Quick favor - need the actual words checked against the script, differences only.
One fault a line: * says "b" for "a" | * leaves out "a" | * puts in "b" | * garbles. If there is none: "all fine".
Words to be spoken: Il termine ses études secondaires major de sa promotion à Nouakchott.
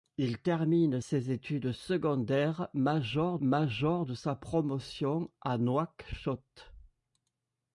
* puts in "major"